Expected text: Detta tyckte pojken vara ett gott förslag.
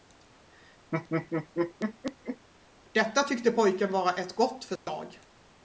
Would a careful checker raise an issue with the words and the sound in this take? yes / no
yes